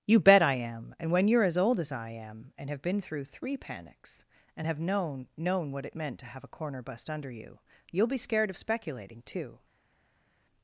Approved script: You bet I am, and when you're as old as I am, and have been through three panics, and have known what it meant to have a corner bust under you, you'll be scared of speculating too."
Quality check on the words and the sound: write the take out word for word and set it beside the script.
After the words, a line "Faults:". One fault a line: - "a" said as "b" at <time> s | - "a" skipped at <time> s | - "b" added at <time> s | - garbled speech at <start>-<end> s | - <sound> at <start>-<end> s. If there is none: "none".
You bet I am, and when you're as old as I am, and have been through three panics, and have known known what it meant to have a corner bust under you, you'll be scared of speculating too."
Faults:
- "known" added at 5.4 s